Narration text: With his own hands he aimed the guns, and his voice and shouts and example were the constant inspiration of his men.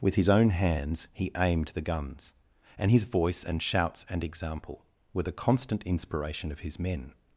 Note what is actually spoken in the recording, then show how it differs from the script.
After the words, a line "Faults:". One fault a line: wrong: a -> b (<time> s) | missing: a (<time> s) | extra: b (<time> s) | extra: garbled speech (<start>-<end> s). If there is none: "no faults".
With his own hands he aimed the guns, and his voice and shouts and example were the constant inspiration of his men.
Faults:
no faults